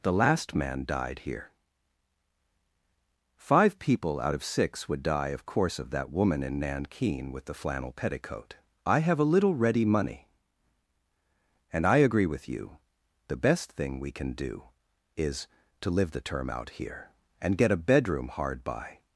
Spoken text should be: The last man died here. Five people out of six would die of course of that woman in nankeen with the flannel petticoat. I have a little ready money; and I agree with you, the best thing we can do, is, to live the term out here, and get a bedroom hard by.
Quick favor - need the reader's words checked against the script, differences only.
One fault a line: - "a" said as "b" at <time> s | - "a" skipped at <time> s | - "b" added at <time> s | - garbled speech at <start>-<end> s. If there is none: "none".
none